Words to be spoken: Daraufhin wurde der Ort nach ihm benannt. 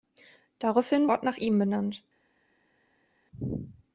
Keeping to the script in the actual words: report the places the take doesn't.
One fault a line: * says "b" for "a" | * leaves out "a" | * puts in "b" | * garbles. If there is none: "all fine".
* leaves out "wurde der"